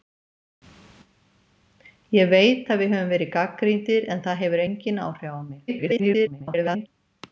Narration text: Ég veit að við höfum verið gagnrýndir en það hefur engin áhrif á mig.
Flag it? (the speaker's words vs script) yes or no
yes